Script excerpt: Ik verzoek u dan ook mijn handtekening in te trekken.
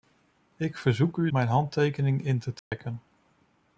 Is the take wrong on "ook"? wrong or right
wrong